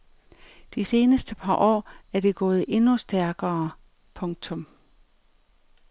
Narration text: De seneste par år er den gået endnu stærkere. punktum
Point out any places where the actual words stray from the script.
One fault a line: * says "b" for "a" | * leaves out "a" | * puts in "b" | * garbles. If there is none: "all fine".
* says "det" for "den"